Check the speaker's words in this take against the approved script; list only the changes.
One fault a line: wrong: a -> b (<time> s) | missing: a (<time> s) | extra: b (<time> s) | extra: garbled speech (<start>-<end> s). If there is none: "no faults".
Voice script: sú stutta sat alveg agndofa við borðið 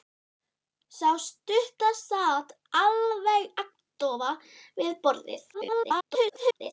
extra: garbled speech (5.5-6.7 s)